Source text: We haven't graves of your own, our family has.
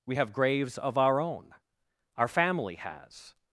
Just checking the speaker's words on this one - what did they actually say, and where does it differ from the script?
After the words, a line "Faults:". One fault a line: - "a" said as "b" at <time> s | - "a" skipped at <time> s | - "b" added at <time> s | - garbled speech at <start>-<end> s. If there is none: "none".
We have graves of our own, our family has.
Faults:
- "haven't" said as "have" at 0.1 s
- "your" said as "our" at 1.0 s